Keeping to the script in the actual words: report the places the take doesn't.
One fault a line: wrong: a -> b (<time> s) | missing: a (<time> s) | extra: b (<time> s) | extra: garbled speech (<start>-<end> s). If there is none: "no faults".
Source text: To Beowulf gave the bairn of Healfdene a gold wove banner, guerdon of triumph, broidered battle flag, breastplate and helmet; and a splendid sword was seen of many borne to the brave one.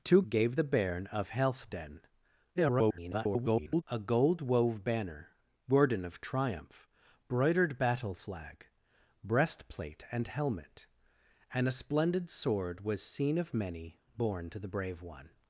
missing: Beowulf (0.2 s)
extra: garbled speech (2.6-3.8 s)